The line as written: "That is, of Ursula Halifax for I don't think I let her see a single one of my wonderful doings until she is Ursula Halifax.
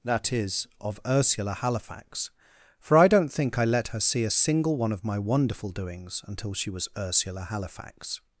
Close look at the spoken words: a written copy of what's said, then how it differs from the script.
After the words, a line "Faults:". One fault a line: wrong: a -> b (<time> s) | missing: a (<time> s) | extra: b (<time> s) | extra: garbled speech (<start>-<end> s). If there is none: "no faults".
"That is, of Ursula Halifax for I don't think I let her see a single one of my wonderful doings until she was Ursula Halifax.
Faults:
wrong: is -> was (6.7 s)